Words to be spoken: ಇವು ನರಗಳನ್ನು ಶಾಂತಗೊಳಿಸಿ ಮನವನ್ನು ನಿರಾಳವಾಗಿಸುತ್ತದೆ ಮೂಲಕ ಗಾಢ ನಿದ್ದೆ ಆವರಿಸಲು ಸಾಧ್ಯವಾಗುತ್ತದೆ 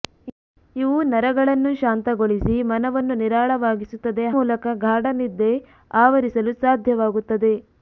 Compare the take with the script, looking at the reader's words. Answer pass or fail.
pass